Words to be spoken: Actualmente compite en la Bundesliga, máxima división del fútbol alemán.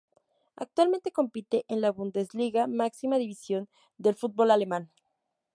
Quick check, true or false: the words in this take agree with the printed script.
true